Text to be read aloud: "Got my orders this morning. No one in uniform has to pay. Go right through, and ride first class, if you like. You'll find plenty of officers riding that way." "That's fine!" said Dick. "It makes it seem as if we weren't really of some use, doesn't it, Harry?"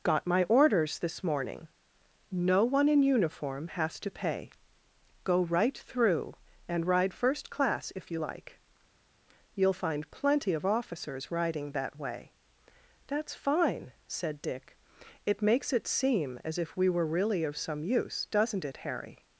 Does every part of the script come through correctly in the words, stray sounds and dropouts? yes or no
no